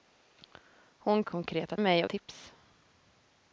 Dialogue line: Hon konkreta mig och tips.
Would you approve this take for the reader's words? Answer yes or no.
yes